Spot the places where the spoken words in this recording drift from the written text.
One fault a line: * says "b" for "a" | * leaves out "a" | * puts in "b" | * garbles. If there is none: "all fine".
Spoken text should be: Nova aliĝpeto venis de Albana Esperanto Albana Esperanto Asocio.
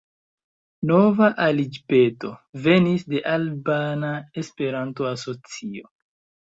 * leaves out "Albana Esperanto"